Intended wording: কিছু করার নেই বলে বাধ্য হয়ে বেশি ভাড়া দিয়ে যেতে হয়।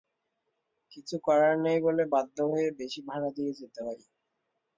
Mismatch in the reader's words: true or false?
false